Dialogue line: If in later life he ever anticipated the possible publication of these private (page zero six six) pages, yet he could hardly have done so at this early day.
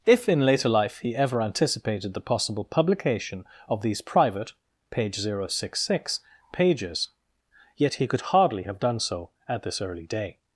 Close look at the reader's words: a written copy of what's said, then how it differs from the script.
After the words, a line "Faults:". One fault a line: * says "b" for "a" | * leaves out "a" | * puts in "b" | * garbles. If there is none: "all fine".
If in later life he ever anticipated the possible publication of these private (page zero six six) pages, yet he could hardly have done so at this early day.
Faults:
all fine